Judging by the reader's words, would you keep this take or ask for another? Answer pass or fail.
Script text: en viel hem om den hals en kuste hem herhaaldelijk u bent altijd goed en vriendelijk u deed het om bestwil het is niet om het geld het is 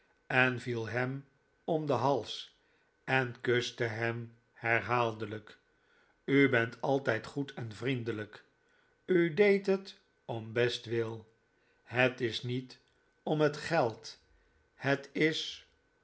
pass